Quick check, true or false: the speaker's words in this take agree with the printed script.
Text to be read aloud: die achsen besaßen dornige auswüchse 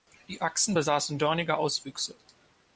true